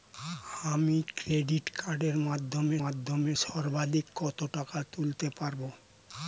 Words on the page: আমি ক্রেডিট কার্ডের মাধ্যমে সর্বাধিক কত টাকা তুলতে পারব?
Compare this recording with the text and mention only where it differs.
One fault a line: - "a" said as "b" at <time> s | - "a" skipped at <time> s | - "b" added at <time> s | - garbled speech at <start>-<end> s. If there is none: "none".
- "মাধ্যমে" added at 2.8 s